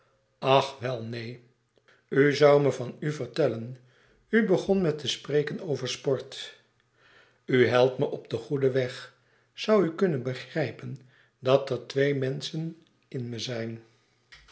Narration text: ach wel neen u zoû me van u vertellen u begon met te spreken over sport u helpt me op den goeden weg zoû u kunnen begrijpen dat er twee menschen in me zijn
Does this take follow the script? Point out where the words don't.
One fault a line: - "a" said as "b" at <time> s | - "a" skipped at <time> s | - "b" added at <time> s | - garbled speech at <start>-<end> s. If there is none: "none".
none